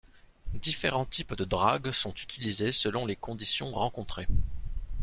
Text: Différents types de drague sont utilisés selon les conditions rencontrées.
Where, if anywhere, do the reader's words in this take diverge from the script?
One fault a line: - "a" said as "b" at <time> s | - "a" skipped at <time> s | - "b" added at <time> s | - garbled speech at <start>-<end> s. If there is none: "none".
none